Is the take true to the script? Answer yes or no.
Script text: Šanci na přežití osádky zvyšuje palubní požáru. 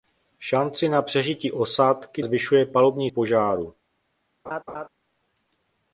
yes